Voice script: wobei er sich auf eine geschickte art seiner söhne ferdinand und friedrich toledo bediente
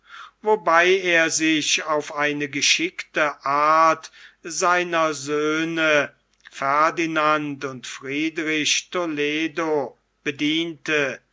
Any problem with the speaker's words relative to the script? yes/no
no